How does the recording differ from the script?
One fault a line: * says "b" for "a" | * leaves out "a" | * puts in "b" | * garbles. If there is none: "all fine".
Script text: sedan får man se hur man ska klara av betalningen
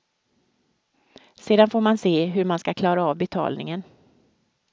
all fine